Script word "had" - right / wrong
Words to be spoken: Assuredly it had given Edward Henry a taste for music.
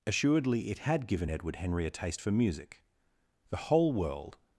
right